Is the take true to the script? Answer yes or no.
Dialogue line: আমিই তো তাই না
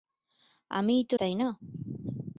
yes